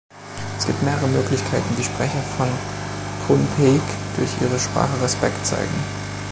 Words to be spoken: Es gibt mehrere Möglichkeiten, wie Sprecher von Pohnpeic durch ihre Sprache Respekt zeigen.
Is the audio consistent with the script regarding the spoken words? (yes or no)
yes